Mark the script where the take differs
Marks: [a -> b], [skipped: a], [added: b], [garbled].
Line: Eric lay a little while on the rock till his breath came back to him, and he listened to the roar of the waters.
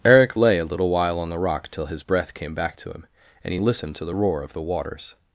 Eric lay a little while on the rock till his breath came back to him, and he listened to the roar of the waters.